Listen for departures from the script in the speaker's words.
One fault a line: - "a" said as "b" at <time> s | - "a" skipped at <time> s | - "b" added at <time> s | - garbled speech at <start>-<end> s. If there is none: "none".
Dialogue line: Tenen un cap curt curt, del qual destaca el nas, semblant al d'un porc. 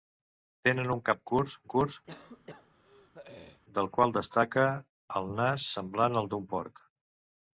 none